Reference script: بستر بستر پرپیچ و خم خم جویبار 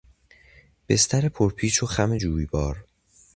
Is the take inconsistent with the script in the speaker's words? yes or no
yes